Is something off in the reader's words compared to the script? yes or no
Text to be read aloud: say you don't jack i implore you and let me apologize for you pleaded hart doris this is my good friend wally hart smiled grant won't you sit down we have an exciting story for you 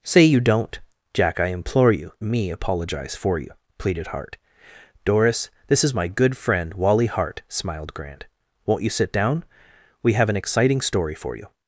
yes